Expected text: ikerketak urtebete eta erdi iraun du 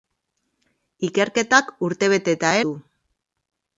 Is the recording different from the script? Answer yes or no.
yes